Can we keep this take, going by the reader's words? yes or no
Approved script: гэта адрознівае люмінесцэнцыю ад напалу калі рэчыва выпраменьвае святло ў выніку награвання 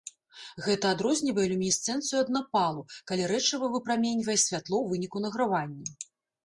yes